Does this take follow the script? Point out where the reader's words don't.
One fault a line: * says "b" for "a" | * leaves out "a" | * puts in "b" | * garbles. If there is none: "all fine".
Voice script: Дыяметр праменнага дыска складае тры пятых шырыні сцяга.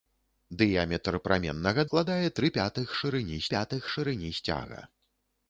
* leaves out "дыска"
* puts in "пятых шырыні"